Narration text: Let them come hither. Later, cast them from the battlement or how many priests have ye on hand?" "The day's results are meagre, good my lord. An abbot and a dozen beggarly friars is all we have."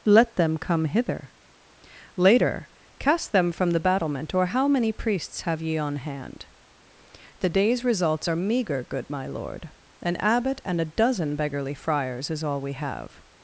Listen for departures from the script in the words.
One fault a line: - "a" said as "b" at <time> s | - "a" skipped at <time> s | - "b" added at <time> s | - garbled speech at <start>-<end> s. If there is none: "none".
none